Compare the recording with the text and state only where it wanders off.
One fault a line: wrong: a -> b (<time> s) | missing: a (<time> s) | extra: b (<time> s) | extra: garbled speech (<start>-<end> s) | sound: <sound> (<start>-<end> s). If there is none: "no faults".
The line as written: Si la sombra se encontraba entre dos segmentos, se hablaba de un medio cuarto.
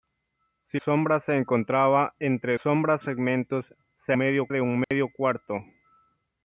missing: la (0.8 s)
wrong: dos -> sombra (2.6 s)
wrong: hablaba -> medio (4.2 s)
sound: dropout (4.8-4.9 s)